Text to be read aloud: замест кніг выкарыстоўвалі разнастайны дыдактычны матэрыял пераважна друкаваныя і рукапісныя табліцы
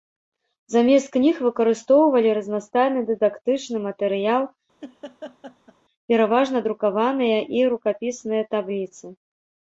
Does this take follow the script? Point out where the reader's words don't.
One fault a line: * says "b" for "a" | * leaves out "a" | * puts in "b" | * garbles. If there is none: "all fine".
all fine